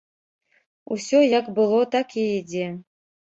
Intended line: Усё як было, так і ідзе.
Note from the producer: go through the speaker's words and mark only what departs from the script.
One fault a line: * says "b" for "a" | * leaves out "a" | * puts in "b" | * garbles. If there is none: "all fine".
all fine